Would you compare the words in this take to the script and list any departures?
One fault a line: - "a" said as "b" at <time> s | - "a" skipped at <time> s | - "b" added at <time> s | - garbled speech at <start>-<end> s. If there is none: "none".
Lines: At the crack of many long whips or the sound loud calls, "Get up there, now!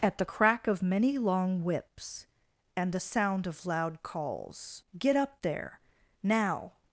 - "or" said as "and" at 2.8 s
- "of" added at 3.5 s